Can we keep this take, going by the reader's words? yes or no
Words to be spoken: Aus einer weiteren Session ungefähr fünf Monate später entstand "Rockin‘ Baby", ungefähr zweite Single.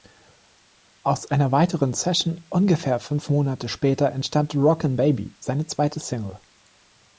no